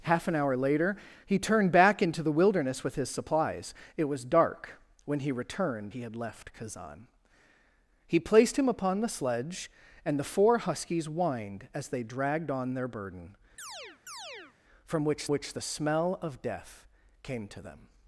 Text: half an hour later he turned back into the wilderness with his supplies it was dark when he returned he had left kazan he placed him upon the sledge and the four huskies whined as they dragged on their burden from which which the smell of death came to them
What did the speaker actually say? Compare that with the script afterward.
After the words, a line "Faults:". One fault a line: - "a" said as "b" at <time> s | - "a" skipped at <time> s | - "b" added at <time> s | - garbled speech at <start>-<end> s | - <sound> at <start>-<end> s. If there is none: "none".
half an hour later he turned back into the wilderness with his supplies it was dark when he returned he had left kazan he placed him upon the sledge and the four huskies whined as they dragged on their burden from which which the smell of death came to them
Faults:
- chirp at 13.6-14.6 s